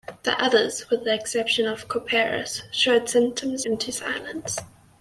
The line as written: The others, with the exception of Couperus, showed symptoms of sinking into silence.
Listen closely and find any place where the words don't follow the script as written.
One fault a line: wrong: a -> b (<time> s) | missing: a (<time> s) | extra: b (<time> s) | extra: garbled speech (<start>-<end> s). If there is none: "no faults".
missing: of sinking (3.7 s)